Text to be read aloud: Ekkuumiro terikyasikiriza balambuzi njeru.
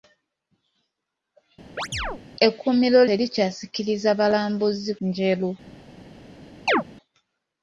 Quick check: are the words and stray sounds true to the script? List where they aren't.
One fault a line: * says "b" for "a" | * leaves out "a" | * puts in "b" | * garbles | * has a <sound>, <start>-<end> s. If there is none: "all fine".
* has a chirp, 1.8-2.2 s
* has a chirp, 6.7-6.8 s